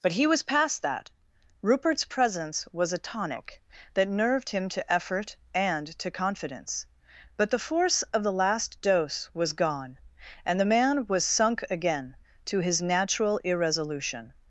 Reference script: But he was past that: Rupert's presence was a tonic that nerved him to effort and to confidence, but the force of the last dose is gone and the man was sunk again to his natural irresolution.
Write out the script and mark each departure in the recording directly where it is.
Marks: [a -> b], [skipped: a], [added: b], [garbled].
But he was past that: Rupert's presence was a tonic that nerved him to effort and to confidence, but the force of the last dose [is -> was] gone and the man was sunk again to his natural irresolution.